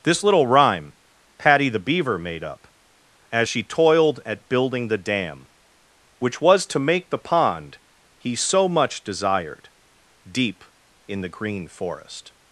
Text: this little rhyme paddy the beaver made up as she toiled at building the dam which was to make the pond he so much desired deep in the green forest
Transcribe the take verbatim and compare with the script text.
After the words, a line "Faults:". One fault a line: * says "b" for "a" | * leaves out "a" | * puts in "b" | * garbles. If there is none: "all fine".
this little rhyme paddy the beaver made up as she toiled at building the dam which was to make the pond he so much desired deep in the green forest
Faults:
all fine